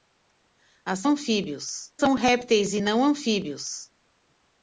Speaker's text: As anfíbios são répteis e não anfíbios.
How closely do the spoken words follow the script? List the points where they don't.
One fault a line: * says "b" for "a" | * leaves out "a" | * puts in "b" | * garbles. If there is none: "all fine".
all fine